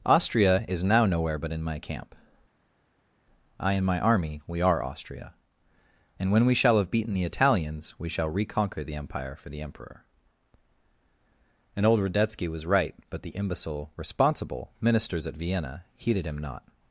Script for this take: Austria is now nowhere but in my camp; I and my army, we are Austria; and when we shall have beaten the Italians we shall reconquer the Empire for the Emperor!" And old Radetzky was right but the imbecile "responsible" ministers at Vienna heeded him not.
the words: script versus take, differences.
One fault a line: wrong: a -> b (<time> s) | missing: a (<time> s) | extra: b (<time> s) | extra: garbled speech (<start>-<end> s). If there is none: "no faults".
no faults